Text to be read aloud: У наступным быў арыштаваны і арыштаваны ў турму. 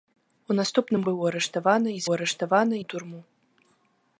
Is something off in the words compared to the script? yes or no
no